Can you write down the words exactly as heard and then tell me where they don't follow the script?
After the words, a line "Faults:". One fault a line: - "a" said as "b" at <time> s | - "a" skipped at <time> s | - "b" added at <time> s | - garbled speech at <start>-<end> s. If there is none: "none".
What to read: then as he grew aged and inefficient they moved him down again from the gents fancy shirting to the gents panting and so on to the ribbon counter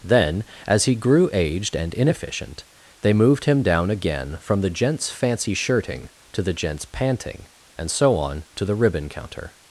then as he grew aged and inefficient they moved him down again from the gents fancy shirting to the gents panting and so on to the ribbon counter
Faults:
none